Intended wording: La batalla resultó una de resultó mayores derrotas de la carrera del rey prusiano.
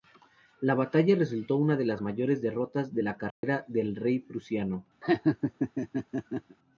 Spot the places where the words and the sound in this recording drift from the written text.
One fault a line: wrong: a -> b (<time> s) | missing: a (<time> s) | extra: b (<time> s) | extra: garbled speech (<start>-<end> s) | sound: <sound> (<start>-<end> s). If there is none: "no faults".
wrong: resultó -> las (1.9 s)
sound: dropout (3.3-3.4 s)
sound: laugh (5.0-6.6 s)